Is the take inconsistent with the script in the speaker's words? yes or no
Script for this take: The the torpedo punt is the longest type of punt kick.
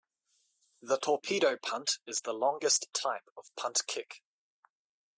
yes